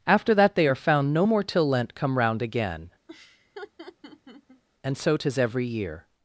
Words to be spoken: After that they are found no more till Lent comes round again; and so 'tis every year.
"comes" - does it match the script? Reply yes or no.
no